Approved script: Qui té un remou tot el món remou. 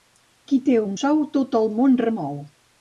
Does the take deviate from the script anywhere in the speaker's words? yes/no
yes